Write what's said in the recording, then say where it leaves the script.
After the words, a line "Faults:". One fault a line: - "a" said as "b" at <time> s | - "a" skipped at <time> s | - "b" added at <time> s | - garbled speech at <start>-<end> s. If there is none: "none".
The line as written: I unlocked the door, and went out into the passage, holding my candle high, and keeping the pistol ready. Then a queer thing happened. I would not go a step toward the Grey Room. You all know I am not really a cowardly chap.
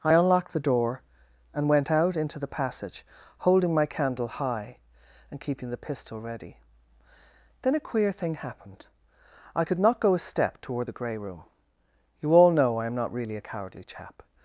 I unlocked the door, and went out into the passage, holding my candle high, and keeping the pistol ready. Then a queer thing happened. I could not go a step toward the Grey Room. You all know I am not really a cowardly chap.
Faults:
- "would" said as "could" at 9.6 s